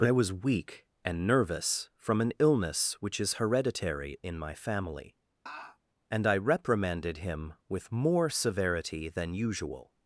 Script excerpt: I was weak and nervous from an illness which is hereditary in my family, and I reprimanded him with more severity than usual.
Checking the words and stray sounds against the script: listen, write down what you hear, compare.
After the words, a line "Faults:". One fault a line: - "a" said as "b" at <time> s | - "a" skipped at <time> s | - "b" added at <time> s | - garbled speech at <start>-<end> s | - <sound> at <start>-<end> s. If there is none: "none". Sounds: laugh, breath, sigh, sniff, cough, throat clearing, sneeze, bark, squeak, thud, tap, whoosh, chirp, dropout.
but I was weak and nervous from an illness which is hereditary in my family, and I reprimanded him with more severity than usual.
Faults:
- "but" added at 0.0 s
- laugh at 5.5-5.8 s